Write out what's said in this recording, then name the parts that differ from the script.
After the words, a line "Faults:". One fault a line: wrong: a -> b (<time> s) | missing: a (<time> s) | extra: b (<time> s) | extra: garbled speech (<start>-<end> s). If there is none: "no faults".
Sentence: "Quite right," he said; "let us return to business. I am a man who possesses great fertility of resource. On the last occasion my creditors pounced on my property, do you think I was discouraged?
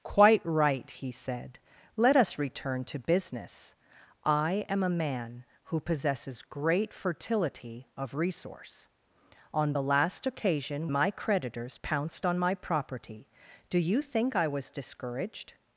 "Quite right," he said; "let us return to business. I am a man who possesses great fertility of resource. On the last occasion my creditors pounced on my property, do you think I was discouraged?
Faults:
no faults